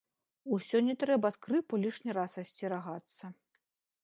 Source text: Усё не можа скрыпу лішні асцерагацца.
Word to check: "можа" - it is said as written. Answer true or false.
false